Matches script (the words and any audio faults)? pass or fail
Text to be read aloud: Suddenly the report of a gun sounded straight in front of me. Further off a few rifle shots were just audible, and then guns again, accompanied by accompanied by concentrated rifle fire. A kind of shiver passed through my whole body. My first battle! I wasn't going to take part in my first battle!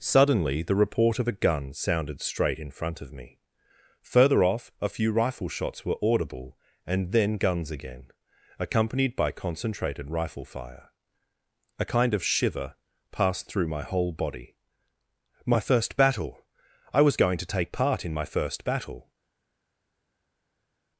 fail